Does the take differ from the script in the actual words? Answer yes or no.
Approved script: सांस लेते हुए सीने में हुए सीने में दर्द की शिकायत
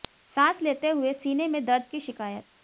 yes